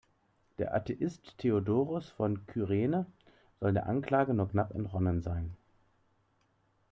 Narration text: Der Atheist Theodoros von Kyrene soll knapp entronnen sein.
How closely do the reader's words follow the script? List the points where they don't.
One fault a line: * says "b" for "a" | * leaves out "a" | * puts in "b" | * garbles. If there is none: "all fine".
* puts in "der Anklage nur"